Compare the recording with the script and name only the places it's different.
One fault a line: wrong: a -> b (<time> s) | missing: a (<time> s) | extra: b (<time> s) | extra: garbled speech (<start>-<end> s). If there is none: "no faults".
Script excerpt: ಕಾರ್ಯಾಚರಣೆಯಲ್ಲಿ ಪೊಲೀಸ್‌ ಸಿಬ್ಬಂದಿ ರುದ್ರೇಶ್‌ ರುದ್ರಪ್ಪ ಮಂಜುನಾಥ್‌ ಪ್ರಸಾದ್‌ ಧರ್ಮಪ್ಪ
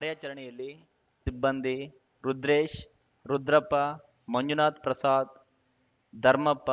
missing: ಪೊಲೀಸ್ (0.7 s)